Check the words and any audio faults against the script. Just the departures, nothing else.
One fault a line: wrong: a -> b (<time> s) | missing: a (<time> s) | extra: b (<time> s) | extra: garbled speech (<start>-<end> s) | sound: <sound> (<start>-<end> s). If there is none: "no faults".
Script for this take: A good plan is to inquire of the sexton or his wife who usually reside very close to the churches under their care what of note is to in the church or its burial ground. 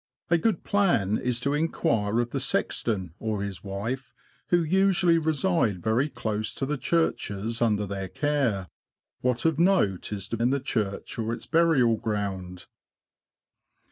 no faults